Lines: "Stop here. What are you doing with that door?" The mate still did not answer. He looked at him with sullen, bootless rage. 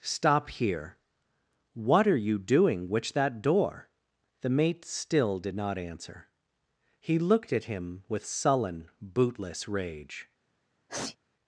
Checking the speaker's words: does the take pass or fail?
fail